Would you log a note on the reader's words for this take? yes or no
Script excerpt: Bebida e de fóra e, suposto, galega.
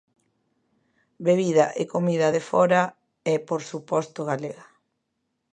yes